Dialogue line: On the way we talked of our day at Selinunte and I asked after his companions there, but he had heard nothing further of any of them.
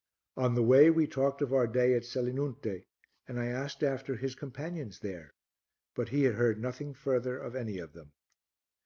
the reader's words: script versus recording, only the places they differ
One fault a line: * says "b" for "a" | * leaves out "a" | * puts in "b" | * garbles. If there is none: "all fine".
all fine